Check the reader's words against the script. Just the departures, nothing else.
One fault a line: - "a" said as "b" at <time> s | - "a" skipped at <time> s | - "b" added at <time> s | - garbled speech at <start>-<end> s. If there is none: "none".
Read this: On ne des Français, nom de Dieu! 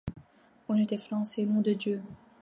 none